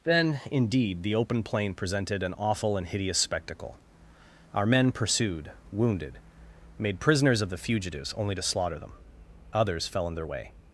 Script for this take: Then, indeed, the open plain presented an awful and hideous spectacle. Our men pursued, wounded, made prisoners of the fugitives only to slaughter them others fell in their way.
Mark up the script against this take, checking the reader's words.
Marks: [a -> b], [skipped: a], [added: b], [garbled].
Then, indeed, the open plain presented an awful and hideous spectacle. Our men pursued, wounded, made prisoners of the fugitives only to slaughter them others fell in their way.